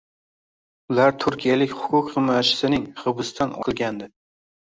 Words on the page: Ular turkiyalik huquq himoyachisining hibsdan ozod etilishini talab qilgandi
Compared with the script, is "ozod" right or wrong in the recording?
wrong